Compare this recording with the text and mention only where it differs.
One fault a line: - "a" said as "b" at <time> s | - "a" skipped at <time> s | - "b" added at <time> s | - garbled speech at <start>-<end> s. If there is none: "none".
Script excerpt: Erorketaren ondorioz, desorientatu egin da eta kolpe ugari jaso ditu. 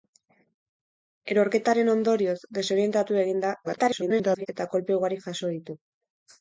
- garbled speech at 3.6-4.5 s